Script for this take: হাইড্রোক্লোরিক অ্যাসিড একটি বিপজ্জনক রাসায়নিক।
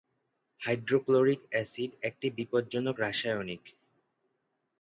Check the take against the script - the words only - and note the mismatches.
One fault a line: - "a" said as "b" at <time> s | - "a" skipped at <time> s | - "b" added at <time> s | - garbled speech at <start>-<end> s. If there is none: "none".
none